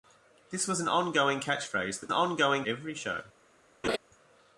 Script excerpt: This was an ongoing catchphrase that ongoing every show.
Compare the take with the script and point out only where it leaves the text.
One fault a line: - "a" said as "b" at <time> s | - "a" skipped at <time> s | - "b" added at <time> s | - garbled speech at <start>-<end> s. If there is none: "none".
none